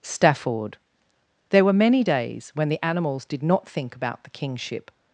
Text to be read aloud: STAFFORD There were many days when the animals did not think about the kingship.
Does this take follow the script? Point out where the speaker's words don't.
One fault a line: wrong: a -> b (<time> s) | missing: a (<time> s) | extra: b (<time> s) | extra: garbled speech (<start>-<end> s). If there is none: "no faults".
no faults